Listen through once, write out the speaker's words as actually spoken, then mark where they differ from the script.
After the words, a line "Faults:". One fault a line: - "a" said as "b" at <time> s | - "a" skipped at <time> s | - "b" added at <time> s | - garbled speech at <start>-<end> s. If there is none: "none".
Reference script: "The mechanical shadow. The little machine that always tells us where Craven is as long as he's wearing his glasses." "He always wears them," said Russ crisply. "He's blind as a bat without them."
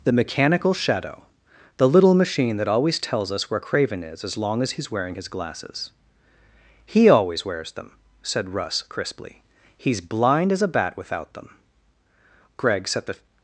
"The mechanical shadow. The little machine that always tells us where Craven is as long as he's wearing his glasses." "He always wears them," said Russ crisply. "He's blind as a bat without them." Greg set the
Faults:
- "Greg set the" added at 12.6 s